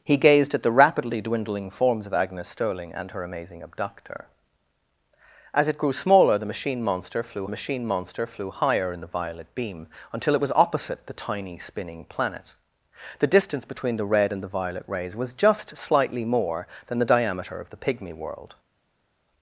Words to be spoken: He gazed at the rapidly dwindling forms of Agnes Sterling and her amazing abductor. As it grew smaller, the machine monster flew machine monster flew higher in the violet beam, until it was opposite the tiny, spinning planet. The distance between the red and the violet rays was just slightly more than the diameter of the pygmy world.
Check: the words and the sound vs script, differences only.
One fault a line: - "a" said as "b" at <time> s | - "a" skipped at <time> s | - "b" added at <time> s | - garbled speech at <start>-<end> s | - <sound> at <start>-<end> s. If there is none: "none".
none